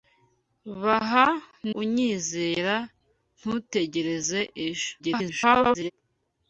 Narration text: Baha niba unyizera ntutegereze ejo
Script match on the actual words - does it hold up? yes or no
no